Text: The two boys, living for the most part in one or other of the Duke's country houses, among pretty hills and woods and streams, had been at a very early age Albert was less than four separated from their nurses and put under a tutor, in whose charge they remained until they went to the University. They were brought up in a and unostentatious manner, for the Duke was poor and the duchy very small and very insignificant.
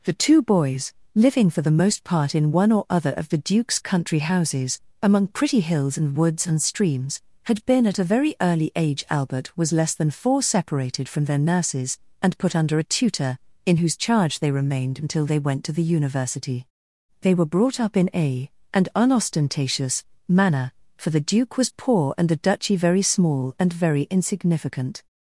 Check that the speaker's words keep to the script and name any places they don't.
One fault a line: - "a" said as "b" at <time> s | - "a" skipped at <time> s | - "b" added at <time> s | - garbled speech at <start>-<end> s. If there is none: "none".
none